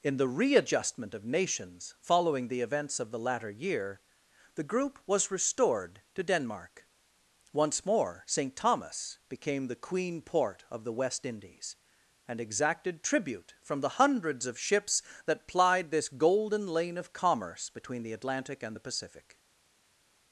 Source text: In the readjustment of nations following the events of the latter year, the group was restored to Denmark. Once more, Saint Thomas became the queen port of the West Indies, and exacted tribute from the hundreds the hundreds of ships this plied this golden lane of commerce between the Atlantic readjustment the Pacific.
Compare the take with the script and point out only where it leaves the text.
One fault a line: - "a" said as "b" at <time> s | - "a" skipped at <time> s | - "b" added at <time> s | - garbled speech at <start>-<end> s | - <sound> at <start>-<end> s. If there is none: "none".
- "the hundreds" skipped at 14.5 s
- "this" said as "that" at 15.3 s
- "readjustment" said as "and" at 18.6 s